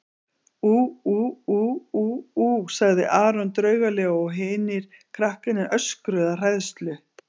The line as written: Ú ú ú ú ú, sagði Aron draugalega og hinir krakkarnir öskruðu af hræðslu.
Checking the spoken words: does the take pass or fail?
pass